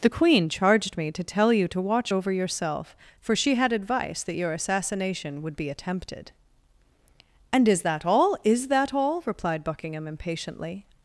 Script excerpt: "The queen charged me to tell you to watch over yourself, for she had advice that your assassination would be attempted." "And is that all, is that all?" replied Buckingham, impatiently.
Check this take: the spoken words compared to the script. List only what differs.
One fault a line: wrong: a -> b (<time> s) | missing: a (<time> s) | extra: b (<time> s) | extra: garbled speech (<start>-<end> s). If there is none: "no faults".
no faults